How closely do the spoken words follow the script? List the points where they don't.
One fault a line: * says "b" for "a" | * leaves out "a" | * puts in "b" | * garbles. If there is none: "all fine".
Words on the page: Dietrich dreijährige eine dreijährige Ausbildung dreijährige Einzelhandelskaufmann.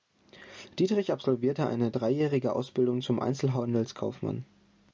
* says "absolvierte" for "dreijährige"
* says "zum" for "dreijährige"